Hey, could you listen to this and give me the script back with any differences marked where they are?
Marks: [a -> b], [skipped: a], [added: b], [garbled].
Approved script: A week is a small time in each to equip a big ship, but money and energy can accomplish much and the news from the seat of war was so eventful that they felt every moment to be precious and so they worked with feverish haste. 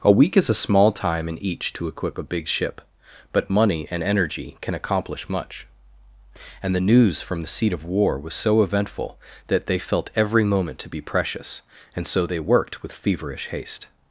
A week is a small time in each to equip a big ship, but money and energy can accomplish much and the news from the seat of war was so eventful that they felt every moment to be precious and so they worked with feverish haste.